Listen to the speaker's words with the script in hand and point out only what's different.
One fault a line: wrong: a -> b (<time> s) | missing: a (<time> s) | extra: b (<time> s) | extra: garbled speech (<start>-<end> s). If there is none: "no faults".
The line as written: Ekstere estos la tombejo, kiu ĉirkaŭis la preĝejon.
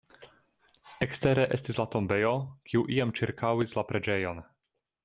wrong: estos -> estis (1.6 s)
extra: iam (3.0 s)